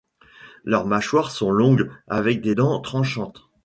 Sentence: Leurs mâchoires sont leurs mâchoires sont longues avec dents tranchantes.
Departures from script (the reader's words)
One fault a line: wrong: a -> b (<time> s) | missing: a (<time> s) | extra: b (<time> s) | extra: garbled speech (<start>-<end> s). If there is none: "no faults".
missing: leurs mâchoires sont (1.5 s)
extra: des (2.4 s)